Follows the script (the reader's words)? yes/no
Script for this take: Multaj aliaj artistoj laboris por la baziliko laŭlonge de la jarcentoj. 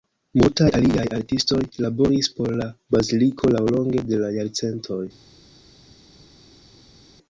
yes